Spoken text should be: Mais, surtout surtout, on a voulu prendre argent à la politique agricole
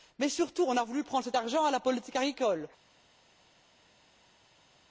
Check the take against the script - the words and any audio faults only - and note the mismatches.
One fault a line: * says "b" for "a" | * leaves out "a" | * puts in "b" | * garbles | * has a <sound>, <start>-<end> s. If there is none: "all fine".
* leaves out "surtout"
* puts in "cet"